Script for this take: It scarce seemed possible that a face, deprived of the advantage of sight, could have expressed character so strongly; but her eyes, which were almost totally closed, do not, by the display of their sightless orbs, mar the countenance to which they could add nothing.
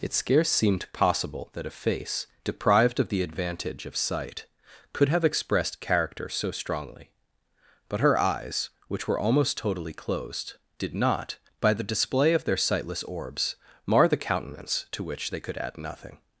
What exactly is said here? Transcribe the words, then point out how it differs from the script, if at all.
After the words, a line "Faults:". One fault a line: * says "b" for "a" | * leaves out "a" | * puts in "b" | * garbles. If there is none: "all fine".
It scarce seemed possible that a face, deprived of the advantage of sight, could have expressed character so strongly; but her eyes, which were almost totally closed, did not, by the display of their sightless orbs, mar the countenance to which they could add nothing.
Faults:
* says "did" for "do"